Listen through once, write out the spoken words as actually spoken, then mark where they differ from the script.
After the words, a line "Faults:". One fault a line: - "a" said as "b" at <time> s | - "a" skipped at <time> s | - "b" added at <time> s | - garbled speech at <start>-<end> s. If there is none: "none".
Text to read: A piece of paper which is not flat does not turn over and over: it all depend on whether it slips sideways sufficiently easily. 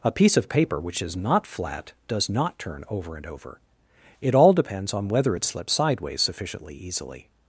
A piece of paper which is not flat does not turn over and over: it all depends on whether it slips sideways sufficiently easily.
Faults:
- "depend" said as "depends" at 4.5 s